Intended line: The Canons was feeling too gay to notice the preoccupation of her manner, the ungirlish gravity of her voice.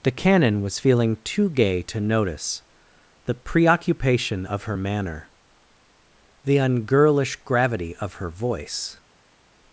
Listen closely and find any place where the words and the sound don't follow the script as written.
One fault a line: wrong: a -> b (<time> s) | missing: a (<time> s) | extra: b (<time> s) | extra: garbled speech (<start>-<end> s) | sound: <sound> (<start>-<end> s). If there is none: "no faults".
wrong: Canons -> Canon (0.1 s)